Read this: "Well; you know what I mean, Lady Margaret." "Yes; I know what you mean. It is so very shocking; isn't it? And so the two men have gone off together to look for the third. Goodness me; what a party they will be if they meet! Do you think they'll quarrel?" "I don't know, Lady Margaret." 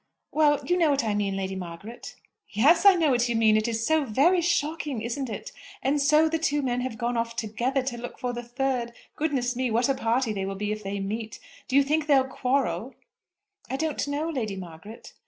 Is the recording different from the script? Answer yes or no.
no